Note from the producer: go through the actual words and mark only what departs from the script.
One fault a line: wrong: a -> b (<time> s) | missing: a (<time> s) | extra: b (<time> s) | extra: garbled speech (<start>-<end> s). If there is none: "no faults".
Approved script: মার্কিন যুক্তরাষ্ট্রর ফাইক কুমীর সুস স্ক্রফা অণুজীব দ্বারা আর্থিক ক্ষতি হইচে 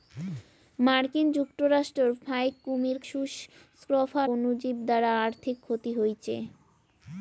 no faults